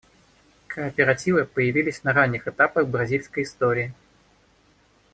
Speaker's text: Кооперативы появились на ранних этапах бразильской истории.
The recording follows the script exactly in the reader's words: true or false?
true